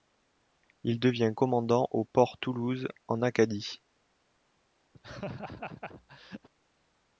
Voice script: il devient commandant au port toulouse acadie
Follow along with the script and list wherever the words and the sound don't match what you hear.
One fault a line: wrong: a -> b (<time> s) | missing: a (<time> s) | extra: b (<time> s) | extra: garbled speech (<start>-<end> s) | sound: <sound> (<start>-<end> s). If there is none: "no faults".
extra: en (3.1 s)
sound: laugh (4.9-6.5 s)